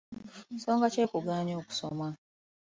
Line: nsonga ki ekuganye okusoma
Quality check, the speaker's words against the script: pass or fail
pass